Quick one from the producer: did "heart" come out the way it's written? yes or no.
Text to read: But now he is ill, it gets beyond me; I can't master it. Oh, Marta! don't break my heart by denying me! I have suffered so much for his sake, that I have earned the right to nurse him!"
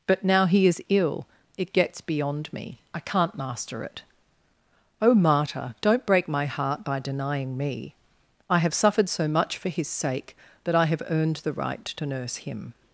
yes